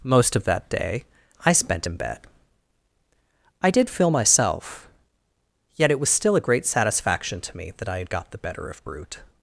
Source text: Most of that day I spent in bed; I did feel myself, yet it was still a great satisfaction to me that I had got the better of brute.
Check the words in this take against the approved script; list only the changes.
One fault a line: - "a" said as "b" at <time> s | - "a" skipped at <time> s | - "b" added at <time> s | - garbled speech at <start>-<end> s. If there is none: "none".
none